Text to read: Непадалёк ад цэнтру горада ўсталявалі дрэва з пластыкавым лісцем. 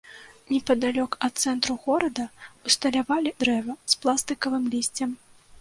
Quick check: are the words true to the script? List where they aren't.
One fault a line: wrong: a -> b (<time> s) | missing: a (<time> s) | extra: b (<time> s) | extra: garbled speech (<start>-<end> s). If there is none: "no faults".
no faults